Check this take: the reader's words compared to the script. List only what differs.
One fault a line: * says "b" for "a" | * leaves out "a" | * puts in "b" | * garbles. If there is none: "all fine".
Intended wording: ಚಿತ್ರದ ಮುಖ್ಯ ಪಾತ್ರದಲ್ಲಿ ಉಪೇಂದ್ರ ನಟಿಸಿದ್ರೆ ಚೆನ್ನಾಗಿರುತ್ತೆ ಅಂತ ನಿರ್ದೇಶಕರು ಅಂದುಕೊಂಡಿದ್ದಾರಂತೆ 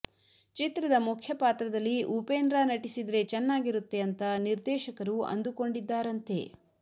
all fine